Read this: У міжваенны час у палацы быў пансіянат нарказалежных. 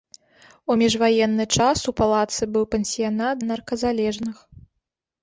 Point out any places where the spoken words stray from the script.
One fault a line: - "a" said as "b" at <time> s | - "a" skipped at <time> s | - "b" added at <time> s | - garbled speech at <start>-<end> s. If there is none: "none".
none